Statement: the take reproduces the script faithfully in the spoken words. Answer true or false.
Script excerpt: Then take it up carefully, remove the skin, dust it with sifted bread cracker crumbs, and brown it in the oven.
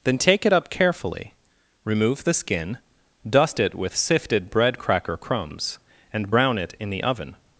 true